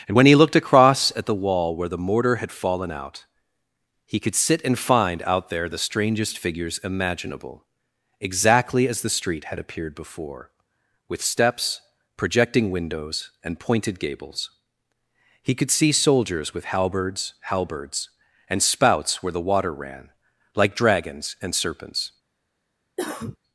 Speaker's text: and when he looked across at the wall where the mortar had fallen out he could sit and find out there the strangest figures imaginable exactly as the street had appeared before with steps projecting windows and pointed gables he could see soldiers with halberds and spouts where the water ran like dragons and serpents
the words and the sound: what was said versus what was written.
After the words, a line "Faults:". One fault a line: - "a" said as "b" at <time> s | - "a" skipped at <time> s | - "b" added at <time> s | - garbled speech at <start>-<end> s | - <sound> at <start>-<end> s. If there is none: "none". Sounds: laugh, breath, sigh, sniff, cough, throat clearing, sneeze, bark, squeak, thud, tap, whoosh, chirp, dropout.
and when he looked across at the wall where the mortar had fallen out he could sit and find out there the strangest figures imaginable exactly as the street had appeared before with steps projecting windows and pointed gables he could see soldiers with halberds halberds and spouts where the water ran like dragons and serpents
Faults:
- "halberds" added at 17.5 s
- cough at 23.0-23.4 s